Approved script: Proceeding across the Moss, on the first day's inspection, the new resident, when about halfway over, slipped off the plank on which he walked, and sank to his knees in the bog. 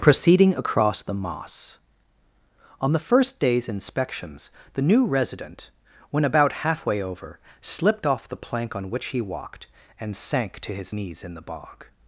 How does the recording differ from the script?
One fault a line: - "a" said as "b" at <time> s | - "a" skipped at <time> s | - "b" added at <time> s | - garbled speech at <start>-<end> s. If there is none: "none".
- "inspection" said as "inspections" at 3.7 s